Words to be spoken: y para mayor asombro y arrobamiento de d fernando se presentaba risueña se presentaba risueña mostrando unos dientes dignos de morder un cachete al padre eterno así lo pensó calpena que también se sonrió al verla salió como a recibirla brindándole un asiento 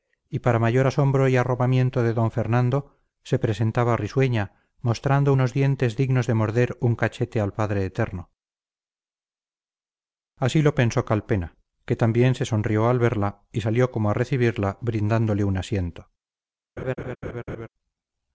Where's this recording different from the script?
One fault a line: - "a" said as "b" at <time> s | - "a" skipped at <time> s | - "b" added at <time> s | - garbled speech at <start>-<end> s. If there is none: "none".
- "se presentaba risueña" skipped at 4.5 s
- "y" added at 13.5 s